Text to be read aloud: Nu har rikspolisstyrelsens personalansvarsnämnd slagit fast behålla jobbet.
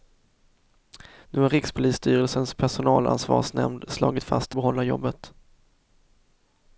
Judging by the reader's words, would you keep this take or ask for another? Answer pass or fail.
pass